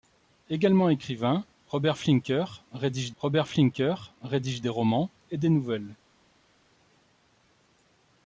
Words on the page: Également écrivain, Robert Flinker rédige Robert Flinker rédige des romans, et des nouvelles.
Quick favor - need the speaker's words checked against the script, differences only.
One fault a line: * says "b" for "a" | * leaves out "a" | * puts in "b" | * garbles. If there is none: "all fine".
all fine